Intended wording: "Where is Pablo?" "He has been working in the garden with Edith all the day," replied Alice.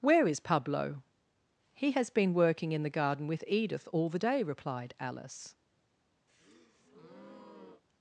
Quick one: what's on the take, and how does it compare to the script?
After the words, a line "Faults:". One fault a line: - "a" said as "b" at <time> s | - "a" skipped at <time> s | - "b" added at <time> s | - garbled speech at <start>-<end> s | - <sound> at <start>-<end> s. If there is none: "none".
"Where is Pablo?" "He has been working in the garden with Edith all the day," replied Alice.
Faults:
- breath at 6.3-7.8 s